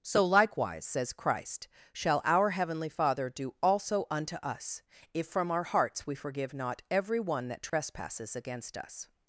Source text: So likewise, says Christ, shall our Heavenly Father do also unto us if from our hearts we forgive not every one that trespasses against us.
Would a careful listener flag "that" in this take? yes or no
no